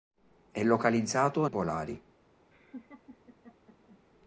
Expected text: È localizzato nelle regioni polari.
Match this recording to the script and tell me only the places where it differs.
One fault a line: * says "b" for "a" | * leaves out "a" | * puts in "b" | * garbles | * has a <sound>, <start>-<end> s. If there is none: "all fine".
* leaves out "nelle regioni"
* has a laugh, 2.5-4.0 s